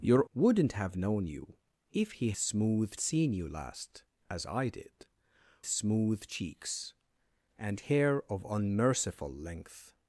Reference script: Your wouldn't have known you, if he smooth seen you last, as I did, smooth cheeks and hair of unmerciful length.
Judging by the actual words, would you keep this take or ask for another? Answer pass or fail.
pass